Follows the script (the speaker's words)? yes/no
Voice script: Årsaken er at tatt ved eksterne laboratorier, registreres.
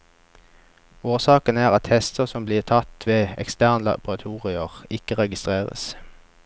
no